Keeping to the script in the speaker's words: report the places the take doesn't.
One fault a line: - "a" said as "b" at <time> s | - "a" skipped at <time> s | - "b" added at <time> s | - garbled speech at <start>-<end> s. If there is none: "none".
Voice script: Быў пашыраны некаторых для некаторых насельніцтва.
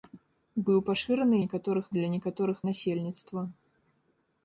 none